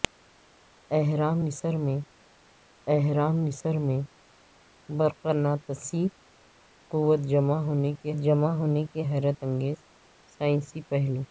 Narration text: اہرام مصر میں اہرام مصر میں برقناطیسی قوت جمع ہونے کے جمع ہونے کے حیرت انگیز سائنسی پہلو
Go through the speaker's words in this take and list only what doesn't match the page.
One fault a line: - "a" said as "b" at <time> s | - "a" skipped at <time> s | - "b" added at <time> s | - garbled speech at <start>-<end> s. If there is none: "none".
none